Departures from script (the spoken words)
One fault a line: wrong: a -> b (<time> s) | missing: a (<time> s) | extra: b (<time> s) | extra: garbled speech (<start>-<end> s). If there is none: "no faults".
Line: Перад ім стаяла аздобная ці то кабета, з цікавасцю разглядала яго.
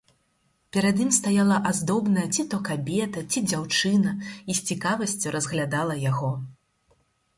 extra: ці дзяўчына і (3.3 s)